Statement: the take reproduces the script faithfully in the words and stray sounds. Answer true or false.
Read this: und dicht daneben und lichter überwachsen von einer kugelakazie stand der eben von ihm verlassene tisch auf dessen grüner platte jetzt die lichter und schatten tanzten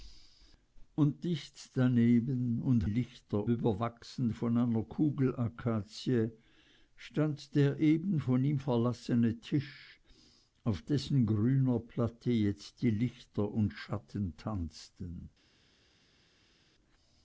true